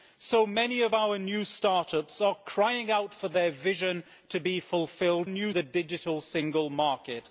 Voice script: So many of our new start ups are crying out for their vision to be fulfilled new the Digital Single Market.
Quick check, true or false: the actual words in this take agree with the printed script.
true